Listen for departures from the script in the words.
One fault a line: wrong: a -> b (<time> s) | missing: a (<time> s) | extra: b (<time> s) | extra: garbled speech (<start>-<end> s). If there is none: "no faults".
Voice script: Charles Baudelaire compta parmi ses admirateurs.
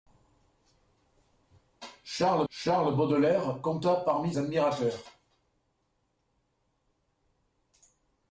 extra: charles (2.5 s)
missing: ses (4.3 s)